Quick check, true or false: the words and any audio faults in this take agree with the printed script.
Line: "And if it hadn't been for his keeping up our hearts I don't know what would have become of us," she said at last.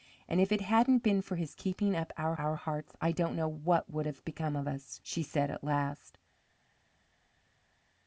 false